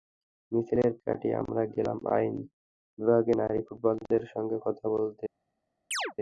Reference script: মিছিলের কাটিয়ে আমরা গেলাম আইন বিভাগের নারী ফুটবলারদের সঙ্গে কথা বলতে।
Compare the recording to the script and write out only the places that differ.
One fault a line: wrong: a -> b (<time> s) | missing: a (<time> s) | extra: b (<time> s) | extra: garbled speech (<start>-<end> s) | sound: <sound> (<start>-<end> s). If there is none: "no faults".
sound: chirp (5.9-6.1 s)